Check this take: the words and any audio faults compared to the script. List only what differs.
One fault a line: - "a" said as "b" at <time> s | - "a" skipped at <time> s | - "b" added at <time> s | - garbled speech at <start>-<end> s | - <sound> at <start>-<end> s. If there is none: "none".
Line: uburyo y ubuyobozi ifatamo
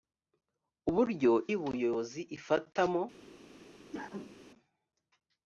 - cough at 3.9-4.4 s